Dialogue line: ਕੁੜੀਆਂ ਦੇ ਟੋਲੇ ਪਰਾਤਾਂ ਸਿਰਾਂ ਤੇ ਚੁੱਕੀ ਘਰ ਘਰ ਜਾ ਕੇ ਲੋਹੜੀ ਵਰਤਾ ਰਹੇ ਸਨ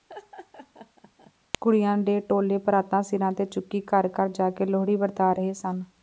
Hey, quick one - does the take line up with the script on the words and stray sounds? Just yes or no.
no